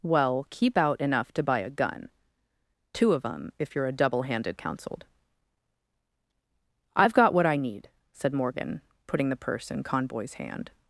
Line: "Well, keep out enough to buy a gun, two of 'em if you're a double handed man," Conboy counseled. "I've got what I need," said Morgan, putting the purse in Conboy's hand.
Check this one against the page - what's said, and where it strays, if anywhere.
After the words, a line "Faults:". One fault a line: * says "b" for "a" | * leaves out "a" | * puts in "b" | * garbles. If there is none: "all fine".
"Well, keep out enough to buy a gun, two of 'em if you're a double handed counseled. "I've got what I need," said Morgan, putting the purse in Conboy's hand.
Faults:
* leaves out "man Conboy"